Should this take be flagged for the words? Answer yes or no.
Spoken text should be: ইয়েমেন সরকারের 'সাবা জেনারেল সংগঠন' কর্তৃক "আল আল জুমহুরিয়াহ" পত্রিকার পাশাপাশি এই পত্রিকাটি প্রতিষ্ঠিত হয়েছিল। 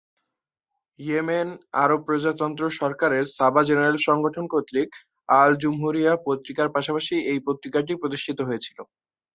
yes